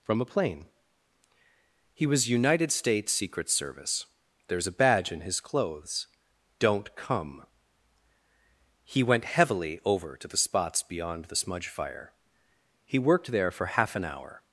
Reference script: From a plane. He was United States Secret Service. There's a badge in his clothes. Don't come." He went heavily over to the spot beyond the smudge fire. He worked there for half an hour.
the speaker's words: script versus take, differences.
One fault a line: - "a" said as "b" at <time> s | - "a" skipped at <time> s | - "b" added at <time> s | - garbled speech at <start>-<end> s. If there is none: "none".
- "spot" said as "spots" at 10.4 s